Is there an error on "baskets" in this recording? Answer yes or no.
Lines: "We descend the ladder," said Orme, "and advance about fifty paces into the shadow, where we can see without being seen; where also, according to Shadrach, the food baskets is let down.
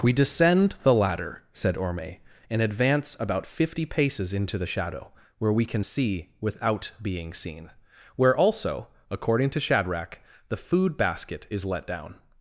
yes